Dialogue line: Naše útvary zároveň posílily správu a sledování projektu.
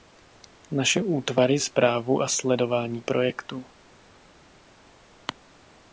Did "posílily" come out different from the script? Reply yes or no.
yes